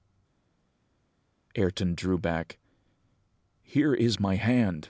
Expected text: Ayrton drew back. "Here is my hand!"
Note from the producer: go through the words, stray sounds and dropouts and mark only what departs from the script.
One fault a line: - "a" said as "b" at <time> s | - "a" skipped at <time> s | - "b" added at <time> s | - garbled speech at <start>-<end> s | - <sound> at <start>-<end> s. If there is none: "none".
none